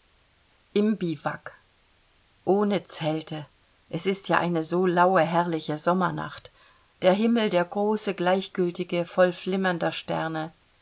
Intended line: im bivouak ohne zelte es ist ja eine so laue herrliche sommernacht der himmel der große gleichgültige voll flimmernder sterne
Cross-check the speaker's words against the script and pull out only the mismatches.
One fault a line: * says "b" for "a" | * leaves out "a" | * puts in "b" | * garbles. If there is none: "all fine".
all fine